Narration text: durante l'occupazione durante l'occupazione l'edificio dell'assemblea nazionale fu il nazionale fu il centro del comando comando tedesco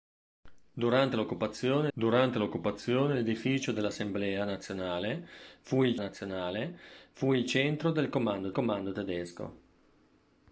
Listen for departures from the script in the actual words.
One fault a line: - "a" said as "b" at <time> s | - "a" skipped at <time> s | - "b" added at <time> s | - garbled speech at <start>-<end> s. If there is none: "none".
none